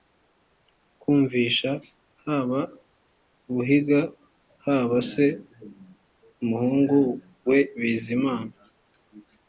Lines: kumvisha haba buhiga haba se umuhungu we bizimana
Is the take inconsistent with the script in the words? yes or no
no